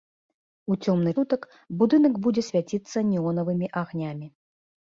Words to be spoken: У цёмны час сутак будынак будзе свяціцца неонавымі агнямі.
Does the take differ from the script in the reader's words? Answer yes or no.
yes